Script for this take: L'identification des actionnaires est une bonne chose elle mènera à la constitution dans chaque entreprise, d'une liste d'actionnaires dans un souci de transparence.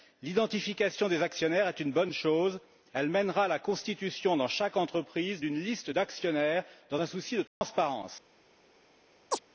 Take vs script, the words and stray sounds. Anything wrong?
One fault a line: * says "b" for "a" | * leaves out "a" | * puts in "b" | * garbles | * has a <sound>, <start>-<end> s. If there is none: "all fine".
* has a dropout, 7.5-7.6 s
* has a chirp, 9.3-9.4 s